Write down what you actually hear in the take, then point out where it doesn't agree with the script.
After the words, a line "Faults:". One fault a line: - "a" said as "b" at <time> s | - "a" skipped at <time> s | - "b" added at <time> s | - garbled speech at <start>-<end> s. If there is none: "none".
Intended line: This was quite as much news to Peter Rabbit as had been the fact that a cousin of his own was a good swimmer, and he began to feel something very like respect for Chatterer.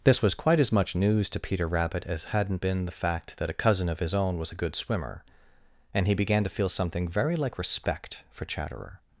This was quite as much news to Peter Rabbit as hadn't been the fact that a cousin of his own was a good swimmer, and he began to feel something very like respect for Chatterer.
Faults:
- "had" said as "hadn't" at 2.2 s